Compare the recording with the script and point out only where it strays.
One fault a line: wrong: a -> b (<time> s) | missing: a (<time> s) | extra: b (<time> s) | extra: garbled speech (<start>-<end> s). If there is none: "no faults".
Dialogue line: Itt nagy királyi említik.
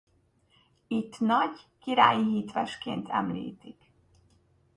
extra: hitvesként (2.3 s)